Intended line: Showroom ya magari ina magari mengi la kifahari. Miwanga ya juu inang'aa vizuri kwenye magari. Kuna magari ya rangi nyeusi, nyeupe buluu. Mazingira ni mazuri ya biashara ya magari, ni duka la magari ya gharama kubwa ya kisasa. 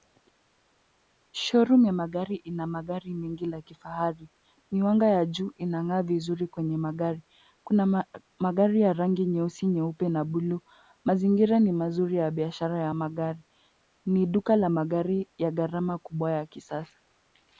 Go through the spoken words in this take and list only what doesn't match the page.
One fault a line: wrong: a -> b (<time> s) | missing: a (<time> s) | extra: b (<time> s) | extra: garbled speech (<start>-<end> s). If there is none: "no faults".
extra: na (10.1 s)